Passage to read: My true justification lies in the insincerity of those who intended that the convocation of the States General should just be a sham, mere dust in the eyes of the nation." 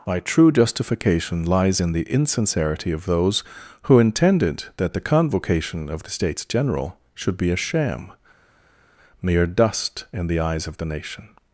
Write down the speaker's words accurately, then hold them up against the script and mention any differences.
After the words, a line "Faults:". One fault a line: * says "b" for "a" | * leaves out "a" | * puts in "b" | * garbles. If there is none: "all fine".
My true justification lies in the insincerity of those who intended that the convocation of the States General should be a sham, mere dust in the eyes of the nation."
Faults:
* leaves out "just"